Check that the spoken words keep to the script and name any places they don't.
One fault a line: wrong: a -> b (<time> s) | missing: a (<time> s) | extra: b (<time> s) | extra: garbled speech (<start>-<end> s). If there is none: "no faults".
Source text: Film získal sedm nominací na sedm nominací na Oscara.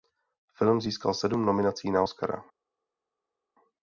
missing: sedm nominací na (2.0 s)